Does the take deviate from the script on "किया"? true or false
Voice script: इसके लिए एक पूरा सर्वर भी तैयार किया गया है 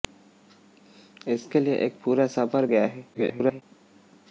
true